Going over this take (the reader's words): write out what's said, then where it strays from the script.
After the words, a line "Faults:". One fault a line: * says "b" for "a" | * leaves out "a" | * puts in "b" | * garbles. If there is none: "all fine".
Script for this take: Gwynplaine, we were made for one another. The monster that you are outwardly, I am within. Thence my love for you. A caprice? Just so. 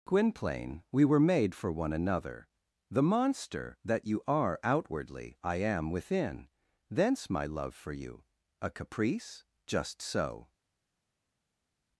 Gwynplaine, we were made for one another. The monster that you are outwardly, I am within. Thence my love for you. A caprice? Just so.
Faults:
all fine